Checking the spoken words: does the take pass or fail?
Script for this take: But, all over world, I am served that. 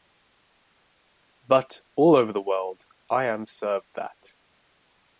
fail